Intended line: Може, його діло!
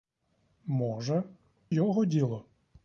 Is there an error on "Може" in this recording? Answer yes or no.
no